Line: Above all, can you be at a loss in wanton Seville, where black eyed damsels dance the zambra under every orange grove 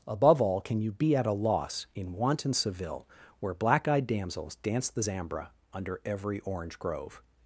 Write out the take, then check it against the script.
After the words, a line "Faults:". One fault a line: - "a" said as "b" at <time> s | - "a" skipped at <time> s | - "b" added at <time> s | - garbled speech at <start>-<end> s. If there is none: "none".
Above all, can you be at a loss in wanton Seville, where black eyed damsels dance the zambra under every orange grove
Faults:
none